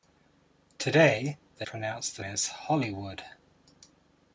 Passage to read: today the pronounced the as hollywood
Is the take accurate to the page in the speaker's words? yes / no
yes